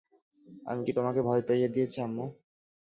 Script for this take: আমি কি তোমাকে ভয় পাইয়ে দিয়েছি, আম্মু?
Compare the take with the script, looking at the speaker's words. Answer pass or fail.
pass